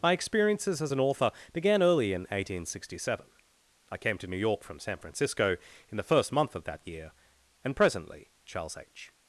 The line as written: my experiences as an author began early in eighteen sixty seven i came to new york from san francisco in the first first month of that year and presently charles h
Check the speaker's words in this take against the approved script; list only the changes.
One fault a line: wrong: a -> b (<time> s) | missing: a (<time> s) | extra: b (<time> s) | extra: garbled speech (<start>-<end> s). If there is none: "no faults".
missing: first (6.3 s)